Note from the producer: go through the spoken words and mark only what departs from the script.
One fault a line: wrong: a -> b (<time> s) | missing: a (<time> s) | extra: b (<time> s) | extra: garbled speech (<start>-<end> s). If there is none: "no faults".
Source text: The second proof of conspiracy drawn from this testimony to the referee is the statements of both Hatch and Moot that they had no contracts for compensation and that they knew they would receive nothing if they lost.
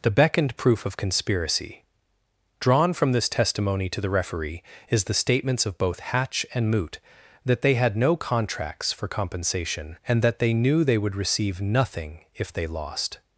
wrong: second -> beckoned (0.1 s)